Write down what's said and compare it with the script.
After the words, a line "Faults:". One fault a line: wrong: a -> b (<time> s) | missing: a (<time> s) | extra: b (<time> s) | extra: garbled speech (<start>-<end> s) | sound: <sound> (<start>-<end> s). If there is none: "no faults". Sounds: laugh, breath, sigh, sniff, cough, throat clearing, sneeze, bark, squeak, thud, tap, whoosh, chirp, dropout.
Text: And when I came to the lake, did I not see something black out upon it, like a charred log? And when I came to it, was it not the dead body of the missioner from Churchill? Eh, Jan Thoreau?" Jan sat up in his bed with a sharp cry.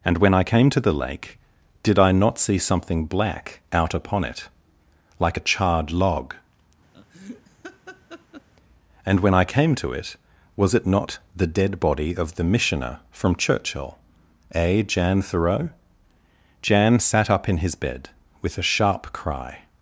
And when I came to the lake, did I not see something black out upon it, like a charred log? And when I came to it, was it not the dead body of the missioner from Churchill? Eh, Jan Thoreau?" Jan sat up in his bed with a sharp cry.
Faults:
sound: laugh (6.9-8.5 s)